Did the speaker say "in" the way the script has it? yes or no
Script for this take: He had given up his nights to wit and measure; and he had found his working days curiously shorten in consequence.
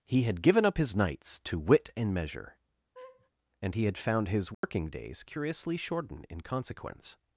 yes